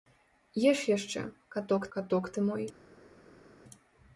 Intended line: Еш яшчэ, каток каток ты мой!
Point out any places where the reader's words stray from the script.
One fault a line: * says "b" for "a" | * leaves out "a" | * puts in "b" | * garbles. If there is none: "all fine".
all fine